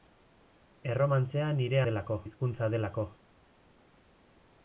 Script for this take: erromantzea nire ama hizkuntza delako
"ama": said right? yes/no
no